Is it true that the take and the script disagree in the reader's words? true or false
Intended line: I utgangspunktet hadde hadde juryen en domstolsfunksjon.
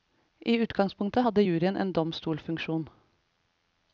true